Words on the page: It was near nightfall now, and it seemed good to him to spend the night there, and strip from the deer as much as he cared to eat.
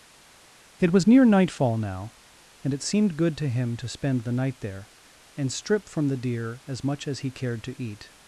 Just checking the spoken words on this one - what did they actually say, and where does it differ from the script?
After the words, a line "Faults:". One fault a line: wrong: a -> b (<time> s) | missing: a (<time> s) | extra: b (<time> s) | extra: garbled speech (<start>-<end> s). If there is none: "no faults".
It was near nightfall now, and it seemed good to him to spend the night there, and strip from the deer as much as he cared to eat.
Faults:
no faults